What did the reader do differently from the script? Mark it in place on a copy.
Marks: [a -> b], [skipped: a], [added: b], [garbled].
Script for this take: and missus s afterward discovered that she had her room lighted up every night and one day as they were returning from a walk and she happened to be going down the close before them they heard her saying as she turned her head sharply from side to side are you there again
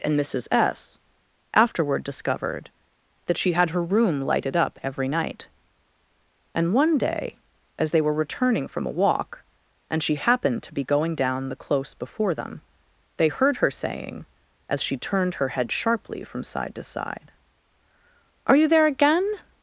and missus s afterward discovered that she had her room lighted up every night and one day as they were returning from a walk and she happened to be going down the close before them they heard her saying as she turned her head sharply from side to side are you there again